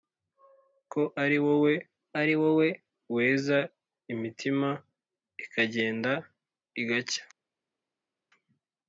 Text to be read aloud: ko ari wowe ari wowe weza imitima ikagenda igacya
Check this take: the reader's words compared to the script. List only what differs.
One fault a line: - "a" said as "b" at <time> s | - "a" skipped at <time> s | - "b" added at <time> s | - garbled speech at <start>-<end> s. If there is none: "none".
none